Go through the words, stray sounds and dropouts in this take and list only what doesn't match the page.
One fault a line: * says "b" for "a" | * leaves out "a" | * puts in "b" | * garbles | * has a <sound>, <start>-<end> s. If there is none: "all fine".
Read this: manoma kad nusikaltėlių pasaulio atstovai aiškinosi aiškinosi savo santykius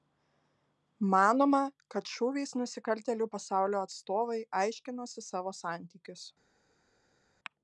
* puts in "šūviais"
* leaves out "aiškinosi"